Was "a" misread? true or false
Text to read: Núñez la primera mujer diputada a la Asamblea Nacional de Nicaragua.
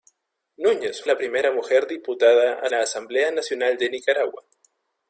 false